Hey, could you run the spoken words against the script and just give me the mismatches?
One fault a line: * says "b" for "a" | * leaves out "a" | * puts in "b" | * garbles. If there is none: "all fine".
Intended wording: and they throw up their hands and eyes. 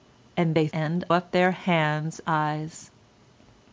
* says "and" for "throw"
* leaves out "and"